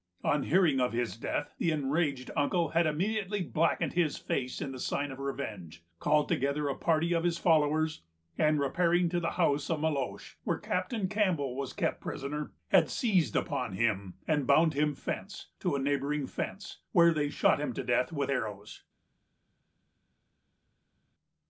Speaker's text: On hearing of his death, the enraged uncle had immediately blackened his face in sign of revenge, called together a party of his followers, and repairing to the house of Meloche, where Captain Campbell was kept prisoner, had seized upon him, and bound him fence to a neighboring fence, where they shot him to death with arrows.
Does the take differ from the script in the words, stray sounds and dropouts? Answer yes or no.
no